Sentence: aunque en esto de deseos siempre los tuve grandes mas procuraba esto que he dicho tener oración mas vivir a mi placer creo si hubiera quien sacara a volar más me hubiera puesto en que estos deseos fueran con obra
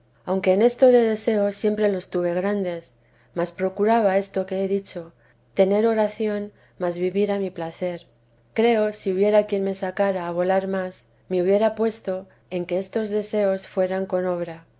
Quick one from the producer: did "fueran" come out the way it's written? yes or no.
yes